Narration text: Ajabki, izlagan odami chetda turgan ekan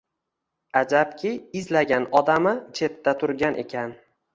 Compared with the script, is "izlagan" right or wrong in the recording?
right